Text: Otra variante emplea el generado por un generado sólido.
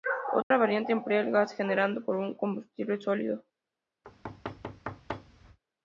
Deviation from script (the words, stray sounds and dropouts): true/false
true